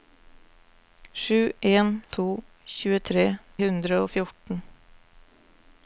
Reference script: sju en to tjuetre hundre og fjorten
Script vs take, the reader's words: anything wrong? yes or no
no